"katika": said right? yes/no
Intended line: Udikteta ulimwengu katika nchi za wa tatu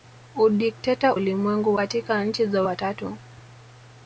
yes